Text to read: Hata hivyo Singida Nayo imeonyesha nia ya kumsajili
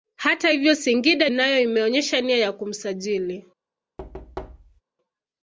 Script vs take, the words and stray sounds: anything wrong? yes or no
yes